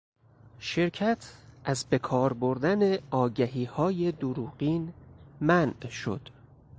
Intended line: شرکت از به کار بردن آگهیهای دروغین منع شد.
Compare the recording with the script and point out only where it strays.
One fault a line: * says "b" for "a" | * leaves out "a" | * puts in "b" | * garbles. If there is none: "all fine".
all fine